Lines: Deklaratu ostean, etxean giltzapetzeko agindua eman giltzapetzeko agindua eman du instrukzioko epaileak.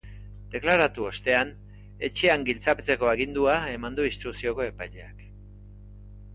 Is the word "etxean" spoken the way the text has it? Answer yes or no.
yes